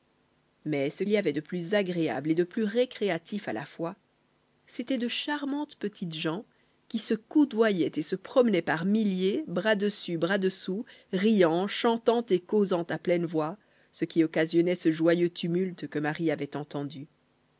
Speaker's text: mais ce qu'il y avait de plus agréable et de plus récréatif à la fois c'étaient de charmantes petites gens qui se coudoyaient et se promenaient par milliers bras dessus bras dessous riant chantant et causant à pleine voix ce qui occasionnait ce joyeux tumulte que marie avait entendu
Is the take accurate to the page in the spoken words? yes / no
no